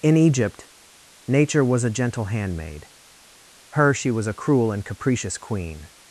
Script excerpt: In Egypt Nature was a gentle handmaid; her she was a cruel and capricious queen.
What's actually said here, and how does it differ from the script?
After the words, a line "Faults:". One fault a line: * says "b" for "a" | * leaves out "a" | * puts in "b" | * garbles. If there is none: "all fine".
In Egypt Nature was a gentle handmaid; her she was a cruel and capricious queen.
Faults:
all fine